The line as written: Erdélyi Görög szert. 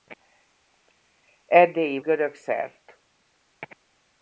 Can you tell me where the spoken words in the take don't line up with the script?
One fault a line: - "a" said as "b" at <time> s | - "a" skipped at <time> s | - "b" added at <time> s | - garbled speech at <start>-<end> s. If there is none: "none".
none